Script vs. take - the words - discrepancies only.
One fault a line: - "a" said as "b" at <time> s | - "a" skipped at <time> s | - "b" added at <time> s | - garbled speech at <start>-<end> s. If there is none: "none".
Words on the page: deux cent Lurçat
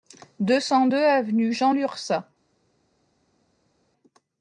- "deux avenue Jean" added at 0.8 s